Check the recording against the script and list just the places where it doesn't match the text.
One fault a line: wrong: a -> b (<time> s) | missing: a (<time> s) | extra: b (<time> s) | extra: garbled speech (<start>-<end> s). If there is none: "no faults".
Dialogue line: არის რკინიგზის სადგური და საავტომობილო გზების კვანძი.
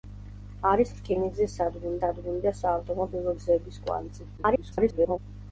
extra: სადგური (2.0 s)
extra: garbled speech (4.4-5.2 s)